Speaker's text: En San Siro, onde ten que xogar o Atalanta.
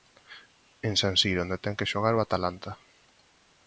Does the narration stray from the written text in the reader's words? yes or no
no